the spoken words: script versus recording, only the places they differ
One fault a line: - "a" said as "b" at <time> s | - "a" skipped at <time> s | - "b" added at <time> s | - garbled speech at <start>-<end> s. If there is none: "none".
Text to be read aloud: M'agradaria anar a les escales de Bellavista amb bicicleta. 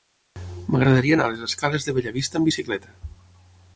none